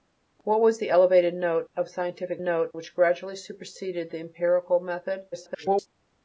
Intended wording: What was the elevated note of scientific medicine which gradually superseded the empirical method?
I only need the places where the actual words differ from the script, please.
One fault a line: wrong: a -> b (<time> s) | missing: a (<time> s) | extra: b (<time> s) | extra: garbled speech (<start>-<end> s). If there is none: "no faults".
wrong: medicine -> note (2.4 s)
extra: garbled speech (5.3-5.9 s)